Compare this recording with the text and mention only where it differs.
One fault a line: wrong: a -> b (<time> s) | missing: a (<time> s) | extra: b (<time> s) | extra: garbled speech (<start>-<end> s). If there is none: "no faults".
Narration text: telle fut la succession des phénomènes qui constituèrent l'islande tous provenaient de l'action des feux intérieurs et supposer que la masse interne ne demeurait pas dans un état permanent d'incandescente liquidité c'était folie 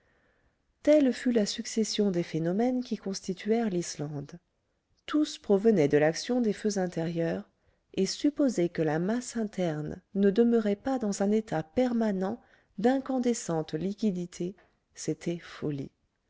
no faults